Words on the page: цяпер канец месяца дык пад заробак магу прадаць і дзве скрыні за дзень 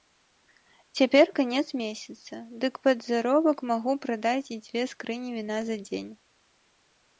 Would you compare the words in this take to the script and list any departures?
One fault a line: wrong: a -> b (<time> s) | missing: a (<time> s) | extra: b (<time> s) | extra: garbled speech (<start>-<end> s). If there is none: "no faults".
extra: віна (5.4 s)